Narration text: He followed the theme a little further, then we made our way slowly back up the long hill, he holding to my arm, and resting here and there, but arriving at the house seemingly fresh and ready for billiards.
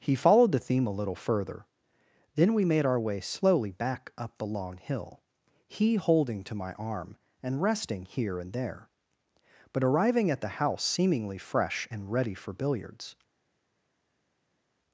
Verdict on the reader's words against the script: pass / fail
pass